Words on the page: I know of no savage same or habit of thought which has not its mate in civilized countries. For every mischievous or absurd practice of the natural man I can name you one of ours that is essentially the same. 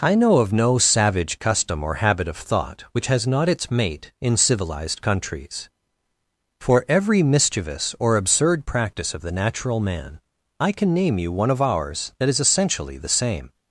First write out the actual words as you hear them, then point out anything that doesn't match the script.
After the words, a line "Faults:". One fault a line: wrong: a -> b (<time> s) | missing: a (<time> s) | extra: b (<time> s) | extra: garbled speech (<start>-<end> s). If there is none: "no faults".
I know of no savage custom or habit of thought which has not its mate in civilized countries. For every mischievous or absurd practice of the natural man I can name you one of ours that is essentially the same.
Faults:
wrong: same -> custom (1.4 s)